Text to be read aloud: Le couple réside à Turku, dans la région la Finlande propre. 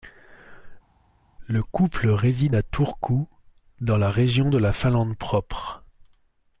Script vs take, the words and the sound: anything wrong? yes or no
yes